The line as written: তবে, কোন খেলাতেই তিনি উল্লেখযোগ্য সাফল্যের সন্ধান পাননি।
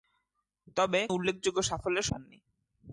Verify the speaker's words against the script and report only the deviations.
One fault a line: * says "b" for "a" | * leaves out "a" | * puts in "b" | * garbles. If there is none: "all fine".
* leaves out "কোন খেলাতেই তিনি"
* leaves out "সন্ধান"